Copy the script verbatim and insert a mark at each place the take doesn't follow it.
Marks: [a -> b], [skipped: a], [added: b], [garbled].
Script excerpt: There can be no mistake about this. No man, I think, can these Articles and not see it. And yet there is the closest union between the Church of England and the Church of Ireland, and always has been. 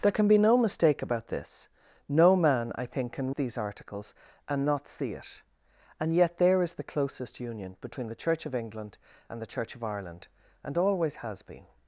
There can be no mistake about this. No man, I think, can these Articles and not see it. And yet there is the closest union between the Church of England and the Church of Ireland, and always has been.